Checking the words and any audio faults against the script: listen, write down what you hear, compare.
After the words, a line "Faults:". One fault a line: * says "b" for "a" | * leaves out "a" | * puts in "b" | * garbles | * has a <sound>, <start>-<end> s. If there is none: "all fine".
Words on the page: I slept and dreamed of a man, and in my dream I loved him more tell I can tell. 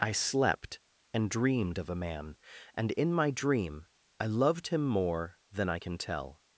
I slept and dreamed of a man, and in my dream I loved him more than I can tell.
Faults:
* says "than" for "tell"